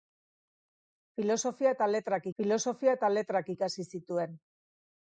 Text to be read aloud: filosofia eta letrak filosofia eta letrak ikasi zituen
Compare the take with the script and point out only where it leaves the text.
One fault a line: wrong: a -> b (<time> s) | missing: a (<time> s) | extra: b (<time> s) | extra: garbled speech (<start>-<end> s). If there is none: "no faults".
no faults